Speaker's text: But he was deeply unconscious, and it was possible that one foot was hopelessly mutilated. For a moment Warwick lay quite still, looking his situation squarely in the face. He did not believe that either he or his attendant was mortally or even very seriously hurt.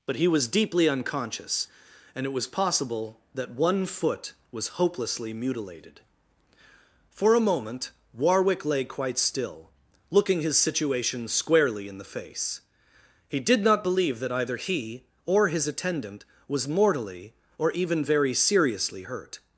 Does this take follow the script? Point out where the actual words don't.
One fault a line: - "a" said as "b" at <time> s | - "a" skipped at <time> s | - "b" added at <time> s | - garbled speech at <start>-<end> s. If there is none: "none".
none